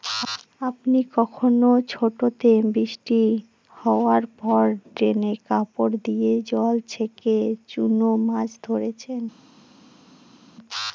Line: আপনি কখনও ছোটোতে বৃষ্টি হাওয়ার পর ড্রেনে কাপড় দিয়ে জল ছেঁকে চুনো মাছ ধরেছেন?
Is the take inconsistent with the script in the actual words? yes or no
no